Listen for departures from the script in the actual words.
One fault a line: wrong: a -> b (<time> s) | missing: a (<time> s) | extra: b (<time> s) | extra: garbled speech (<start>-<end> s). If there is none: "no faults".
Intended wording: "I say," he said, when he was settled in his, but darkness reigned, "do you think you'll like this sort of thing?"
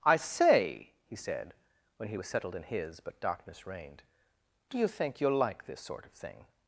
no faults